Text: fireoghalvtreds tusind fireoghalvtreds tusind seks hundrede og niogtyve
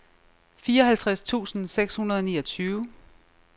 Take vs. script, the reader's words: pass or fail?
fail